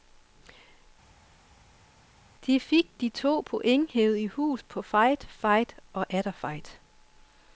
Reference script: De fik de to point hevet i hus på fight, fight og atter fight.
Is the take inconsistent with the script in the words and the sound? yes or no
no